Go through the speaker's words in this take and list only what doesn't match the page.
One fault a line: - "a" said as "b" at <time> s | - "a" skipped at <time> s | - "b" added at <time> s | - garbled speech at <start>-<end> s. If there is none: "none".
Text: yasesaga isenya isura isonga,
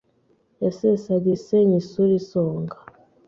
none